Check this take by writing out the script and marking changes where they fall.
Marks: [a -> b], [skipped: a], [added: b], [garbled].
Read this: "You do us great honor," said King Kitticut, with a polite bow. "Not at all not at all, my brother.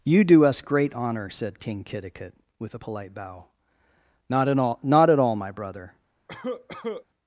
"You do us great honor," said King Kitticut, with a polite bow. "Not at all not at all, my brother.